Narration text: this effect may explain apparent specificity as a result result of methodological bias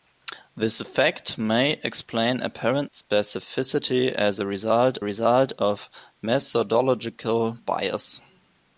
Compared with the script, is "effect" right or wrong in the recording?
right